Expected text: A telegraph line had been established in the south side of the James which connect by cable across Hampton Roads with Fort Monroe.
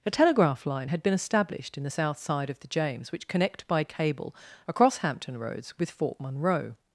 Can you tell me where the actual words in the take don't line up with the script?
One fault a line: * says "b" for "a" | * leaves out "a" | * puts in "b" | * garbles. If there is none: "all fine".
all fine